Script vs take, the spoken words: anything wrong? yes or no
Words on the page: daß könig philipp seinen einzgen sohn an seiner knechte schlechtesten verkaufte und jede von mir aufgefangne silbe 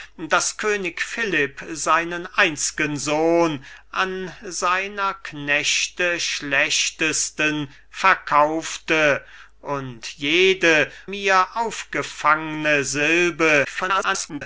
yes